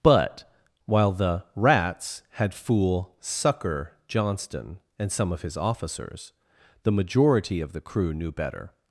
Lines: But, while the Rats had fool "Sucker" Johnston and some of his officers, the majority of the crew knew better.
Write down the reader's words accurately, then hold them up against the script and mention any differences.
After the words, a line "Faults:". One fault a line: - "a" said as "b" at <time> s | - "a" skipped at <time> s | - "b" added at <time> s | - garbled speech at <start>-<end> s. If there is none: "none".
But, while the Rats had fool "Sucker" Johnston and some of his officers, the majority of the crew knew better.
Faults:
none